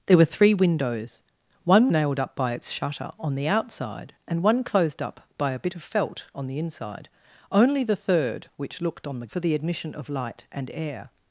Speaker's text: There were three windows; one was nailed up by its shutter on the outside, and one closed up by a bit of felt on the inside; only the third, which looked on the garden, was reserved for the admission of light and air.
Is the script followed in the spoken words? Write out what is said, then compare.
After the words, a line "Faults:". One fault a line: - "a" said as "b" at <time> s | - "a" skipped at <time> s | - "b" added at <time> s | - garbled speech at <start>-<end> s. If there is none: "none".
There were three windows; one nailed up by its shutter on the outside, and one closed up by a bit of felt on the inside; only the third, which looked on the for the admission of light and air.
Faults:
- "was" skipped at 1.9 s
- "garden was reserved" skipped at 9.3 s